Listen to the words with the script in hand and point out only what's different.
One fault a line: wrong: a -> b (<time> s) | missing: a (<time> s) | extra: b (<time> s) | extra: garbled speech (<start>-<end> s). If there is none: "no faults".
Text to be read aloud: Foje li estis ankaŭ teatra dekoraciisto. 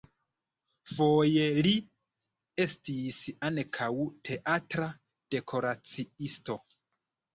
no faults